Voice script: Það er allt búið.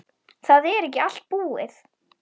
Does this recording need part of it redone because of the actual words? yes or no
yes